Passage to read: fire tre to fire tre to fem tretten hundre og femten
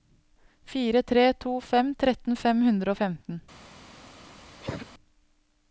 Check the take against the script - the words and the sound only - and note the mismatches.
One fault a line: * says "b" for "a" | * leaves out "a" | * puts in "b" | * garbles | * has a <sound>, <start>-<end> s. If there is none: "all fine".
* says "fem tretten" for "fire tre to"
* leaves out "tretten"
* has a cough, 4.6-4.9 s